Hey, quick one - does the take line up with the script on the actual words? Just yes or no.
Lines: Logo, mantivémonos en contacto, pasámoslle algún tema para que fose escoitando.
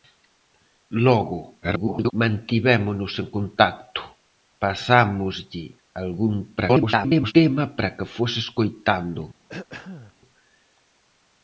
no